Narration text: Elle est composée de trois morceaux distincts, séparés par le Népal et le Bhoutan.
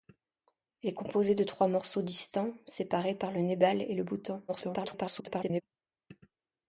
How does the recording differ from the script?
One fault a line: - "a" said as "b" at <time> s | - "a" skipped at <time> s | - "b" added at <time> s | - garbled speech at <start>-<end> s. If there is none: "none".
- garbled speech at 4.5-5.6 s